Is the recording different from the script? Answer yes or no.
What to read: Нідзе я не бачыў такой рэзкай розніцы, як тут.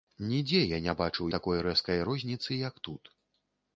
no